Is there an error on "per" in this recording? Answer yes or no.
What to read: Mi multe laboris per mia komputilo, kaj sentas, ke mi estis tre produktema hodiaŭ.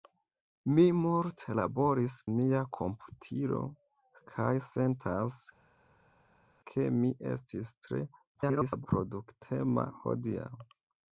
yes